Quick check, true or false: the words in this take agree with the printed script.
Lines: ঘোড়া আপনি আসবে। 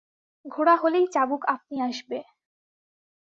false